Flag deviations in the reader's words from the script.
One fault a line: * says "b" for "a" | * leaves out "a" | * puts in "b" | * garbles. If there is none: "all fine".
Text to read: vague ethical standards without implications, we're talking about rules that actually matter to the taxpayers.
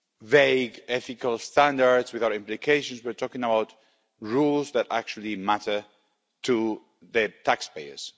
all fine